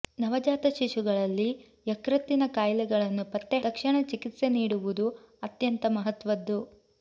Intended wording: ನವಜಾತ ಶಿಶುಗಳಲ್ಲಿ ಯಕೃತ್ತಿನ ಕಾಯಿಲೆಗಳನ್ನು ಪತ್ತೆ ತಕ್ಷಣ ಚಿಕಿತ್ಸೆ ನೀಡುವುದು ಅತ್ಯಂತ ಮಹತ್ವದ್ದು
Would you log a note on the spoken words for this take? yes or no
no